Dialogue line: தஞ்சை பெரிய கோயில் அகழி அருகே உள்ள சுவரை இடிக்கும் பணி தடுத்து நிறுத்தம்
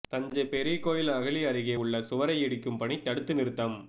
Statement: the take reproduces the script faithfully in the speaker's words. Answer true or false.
true